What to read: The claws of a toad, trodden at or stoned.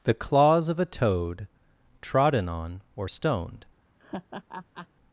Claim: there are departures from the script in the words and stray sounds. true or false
true